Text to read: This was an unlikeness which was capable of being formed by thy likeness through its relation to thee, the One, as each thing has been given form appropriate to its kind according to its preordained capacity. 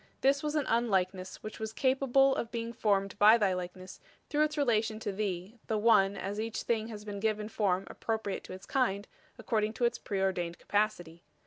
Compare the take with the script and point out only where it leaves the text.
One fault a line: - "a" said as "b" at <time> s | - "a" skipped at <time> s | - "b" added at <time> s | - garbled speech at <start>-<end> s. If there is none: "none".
none